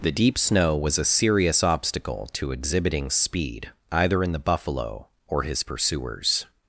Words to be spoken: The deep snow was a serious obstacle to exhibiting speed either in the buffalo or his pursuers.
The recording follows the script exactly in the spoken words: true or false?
true